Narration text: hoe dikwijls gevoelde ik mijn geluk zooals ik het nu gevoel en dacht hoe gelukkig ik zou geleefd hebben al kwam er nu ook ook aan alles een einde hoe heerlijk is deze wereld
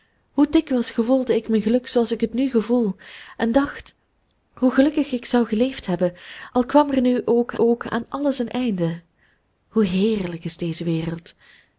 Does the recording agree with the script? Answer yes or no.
yes